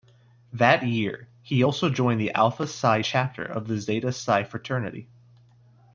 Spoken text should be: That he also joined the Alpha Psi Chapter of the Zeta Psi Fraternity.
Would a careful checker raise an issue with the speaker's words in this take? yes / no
yes